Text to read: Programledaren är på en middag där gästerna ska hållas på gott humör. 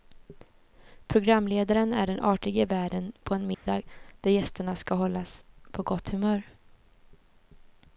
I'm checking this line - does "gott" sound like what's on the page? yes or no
yes